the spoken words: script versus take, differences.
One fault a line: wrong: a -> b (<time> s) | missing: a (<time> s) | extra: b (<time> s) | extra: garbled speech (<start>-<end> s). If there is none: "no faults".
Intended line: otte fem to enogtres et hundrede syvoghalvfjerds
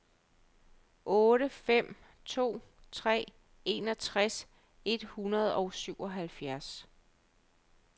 extra: tre (2.9 s)
extra: og (5.5 s)